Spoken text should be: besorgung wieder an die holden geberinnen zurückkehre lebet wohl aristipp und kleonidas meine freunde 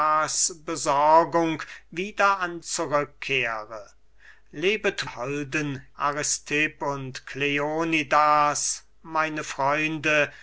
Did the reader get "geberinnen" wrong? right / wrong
wrong